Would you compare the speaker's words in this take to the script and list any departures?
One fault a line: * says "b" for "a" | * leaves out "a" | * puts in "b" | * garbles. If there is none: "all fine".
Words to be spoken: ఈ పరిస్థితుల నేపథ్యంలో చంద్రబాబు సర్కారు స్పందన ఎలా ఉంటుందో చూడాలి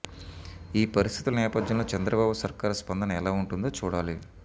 all fine